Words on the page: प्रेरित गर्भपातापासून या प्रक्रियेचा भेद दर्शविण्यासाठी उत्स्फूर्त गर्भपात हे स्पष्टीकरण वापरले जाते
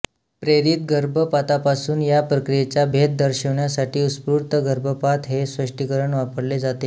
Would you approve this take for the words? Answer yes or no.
yes